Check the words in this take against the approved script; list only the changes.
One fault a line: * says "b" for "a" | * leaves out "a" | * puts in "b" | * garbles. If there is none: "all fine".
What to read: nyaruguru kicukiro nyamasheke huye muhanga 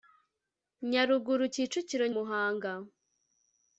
* leaves out "nyamasheke huye"